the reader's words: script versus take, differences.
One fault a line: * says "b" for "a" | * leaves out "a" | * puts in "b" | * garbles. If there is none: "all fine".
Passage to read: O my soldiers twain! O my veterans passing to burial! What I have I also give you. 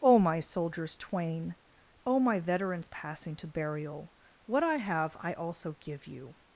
all fine